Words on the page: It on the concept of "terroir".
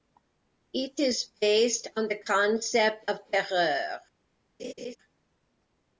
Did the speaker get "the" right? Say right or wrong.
right